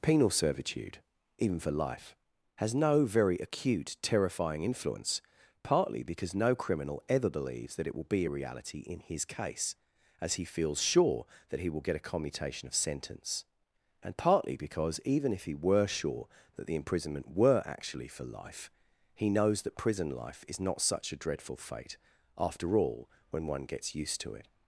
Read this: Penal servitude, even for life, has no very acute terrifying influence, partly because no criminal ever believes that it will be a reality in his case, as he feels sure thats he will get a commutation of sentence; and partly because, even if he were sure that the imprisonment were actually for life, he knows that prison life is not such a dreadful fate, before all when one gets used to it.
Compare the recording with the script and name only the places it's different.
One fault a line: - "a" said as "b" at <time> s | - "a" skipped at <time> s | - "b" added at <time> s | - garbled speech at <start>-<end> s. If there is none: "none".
- "thats" said as "that" at 11.5 s
- "before" said as "after" at 22.4 s